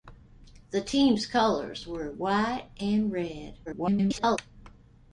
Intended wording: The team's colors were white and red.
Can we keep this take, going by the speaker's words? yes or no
no